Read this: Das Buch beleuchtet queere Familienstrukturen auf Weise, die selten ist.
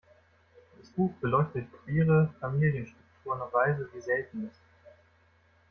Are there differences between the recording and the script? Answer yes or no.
no